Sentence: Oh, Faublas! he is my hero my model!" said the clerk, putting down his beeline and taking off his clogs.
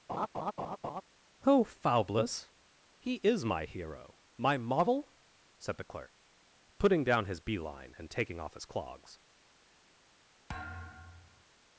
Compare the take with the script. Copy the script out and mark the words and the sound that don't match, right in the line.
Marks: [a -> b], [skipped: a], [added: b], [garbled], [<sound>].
[laugh] Oh, Faublas! he is my hero my model!" said the clerk, putting down his beeline and taking off his clogs. [thud]